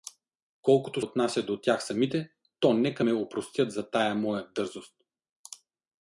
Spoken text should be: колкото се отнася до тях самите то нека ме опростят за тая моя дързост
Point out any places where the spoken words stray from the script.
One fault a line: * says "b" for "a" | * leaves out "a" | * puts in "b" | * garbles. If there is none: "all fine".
* leaves out "се"